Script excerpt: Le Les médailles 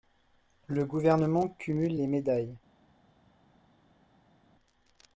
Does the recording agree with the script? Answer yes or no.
no